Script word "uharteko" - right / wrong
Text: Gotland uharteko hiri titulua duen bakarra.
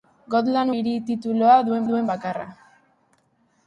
wrong